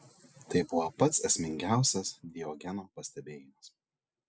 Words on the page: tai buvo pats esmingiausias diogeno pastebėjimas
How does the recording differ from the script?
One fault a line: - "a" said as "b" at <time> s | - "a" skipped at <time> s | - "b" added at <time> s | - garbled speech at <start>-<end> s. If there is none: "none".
none